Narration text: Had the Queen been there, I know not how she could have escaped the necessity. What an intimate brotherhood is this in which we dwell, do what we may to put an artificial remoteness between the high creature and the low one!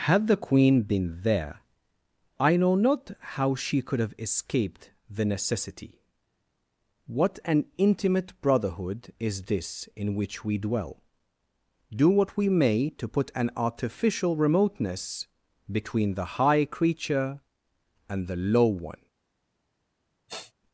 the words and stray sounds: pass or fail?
fail